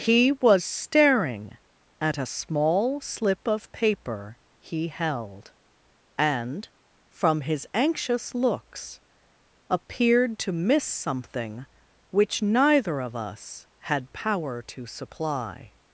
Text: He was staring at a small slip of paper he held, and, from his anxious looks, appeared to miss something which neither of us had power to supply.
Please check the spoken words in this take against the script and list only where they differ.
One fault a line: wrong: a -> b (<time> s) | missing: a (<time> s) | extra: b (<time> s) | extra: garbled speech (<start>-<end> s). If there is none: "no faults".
no faults